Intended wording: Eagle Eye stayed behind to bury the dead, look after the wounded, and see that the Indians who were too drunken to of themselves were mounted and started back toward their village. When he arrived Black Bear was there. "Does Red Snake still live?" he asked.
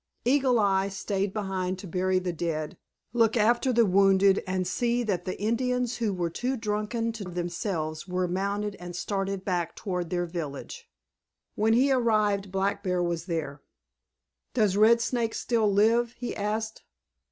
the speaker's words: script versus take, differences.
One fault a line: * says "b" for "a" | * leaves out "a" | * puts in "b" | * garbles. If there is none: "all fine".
all fine